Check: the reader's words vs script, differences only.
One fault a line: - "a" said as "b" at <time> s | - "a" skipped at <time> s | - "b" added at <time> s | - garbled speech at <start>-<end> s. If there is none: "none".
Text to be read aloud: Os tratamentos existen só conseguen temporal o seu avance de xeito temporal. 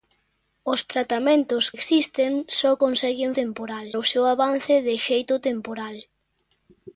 none